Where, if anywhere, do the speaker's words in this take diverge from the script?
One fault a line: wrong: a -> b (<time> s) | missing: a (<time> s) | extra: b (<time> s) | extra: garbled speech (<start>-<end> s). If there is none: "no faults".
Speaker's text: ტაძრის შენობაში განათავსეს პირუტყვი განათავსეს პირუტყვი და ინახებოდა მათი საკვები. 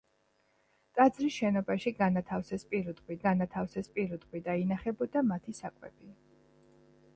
no faults